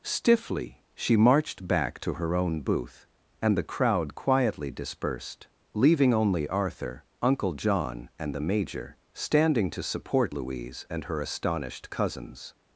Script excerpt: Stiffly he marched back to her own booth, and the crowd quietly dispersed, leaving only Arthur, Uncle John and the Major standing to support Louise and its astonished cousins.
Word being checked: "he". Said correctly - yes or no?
no